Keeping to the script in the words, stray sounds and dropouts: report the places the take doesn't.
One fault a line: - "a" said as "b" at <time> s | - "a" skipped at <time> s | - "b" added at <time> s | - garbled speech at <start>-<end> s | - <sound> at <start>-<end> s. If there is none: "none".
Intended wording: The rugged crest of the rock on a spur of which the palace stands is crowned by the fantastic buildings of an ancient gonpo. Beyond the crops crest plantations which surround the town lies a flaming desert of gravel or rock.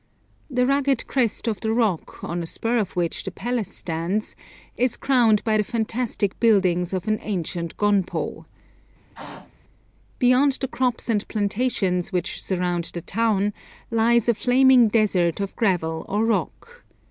- throat clearing at 9.1-9.5 s
- "crest" said as "and" at 11.1 s